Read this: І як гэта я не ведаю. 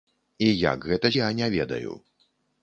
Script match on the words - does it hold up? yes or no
yes